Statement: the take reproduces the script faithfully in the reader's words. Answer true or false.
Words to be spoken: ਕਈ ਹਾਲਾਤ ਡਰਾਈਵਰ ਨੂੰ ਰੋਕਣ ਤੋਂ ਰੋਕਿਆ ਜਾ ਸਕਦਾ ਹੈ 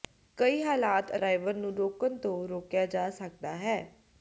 true